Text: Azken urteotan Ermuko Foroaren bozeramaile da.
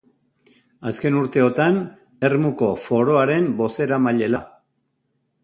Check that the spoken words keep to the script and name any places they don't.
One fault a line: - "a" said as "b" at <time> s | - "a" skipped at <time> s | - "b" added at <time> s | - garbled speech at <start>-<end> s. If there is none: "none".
none